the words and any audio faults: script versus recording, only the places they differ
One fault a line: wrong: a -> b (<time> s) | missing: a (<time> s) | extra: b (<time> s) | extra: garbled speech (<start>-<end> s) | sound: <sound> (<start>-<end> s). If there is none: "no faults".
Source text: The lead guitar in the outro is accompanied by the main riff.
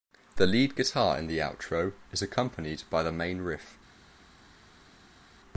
no faults